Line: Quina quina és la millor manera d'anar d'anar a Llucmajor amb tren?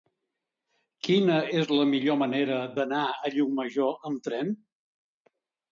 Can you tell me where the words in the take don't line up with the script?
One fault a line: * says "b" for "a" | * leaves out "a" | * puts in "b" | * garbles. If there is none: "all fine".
* leaves out "quina"
* leaves out "d'anar"